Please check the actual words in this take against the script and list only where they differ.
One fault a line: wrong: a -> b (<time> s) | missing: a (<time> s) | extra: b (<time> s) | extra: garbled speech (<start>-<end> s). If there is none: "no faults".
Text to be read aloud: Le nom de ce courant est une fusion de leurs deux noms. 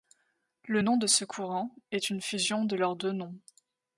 no faults